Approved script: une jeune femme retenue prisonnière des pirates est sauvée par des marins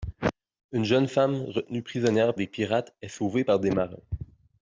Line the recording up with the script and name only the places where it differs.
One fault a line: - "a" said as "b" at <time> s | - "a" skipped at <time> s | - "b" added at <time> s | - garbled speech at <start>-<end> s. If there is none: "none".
none